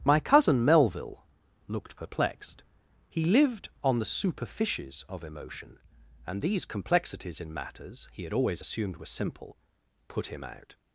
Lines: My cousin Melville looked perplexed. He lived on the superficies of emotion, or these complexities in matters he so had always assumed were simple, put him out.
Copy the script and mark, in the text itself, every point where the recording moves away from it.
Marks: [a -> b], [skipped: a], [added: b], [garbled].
My cousin Melville looked perplexed. He lived on the superficies of emotion, [or -> and] these complexities in matters he [skipped: so] had always assumed were simple, put him out.